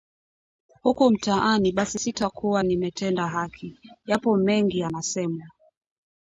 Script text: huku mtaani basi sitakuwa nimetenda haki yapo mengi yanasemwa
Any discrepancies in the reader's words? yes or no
no